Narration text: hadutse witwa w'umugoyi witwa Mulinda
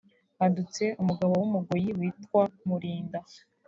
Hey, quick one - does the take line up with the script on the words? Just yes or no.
no